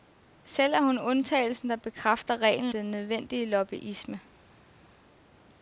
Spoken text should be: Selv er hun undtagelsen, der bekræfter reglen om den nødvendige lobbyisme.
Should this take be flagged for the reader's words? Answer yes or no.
yes